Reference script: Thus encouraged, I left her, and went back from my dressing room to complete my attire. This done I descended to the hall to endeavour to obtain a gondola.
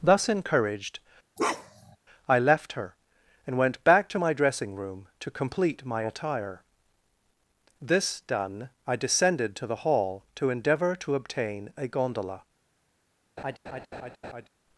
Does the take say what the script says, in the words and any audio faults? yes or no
no